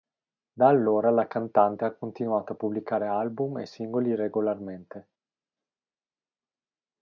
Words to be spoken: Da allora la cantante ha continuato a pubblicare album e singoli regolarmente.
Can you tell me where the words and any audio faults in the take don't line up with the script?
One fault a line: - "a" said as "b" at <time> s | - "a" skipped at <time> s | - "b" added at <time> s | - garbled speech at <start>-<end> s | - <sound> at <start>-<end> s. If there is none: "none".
none